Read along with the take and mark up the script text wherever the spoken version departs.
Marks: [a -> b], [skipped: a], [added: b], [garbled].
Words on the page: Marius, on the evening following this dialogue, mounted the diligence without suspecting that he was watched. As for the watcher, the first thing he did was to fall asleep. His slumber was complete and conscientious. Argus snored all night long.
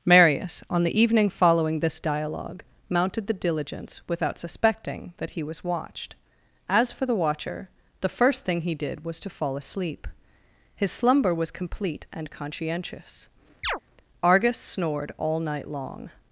Marius, on the evening following this dialogue, mounted the diligence without suspecting that he was watched. As for the watcher, the first thing he did was to fall asleep. His slumber was complete and conscientious. Argus snored all night long.